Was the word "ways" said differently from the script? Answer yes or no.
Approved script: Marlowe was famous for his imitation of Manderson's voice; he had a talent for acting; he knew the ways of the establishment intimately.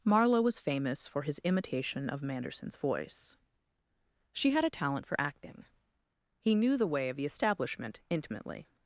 yes